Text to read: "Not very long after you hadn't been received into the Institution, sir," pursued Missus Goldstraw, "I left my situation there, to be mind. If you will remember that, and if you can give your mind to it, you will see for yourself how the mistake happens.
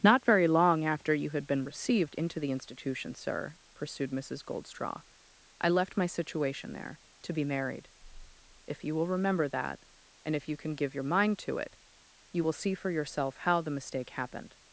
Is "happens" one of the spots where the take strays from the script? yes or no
yes